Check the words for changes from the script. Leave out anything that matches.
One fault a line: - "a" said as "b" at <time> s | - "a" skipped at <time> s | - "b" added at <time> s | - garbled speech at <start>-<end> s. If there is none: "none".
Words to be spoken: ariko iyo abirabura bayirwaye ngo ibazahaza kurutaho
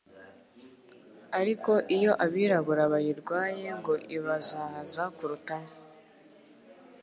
none